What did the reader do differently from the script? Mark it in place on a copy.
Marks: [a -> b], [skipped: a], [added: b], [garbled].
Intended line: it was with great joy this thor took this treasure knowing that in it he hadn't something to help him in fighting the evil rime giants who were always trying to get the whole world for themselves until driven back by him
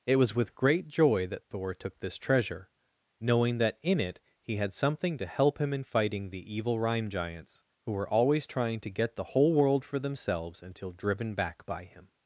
it was with great joy [this -> that] thor took this treasure knowing that in it he [hadn't -> had] something to help him in fighting the evil rime giants who were always trying to get the whole world for themselves until driven back by him